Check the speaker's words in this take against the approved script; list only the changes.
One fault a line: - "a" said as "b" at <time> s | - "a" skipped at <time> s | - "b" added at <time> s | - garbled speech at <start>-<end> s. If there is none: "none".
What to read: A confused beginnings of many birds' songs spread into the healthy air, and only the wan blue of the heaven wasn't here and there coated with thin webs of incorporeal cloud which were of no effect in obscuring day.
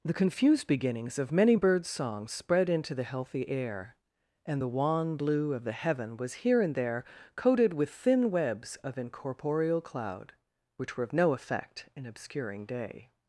- "A" said as "The" at 0.0 s
- "only" skipped at 4.6 s
- "wasn't" said as "was" at 6.2 s